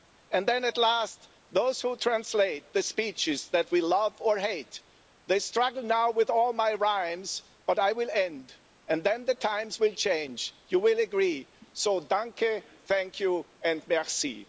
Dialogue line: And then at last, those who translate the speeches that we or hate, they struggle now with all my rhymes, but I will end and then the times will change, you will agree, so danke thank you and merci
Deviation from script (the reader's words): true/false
true